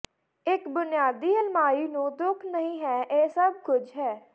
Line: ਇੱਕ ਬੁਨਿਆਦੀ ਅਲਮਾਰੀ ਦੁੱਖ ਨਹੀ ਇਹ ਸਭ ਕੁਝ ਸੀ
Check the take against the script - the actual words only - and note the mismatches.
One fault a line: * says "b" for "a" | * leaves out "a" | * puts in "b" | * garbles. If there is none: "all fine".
* puts in "ਨੂੰ"
* puts in "ਹੈ"
* says "ਹੈ" for "ਸੀ"